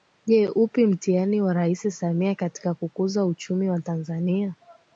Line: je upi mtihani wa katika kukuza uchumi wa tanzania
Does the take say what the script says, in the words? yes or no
no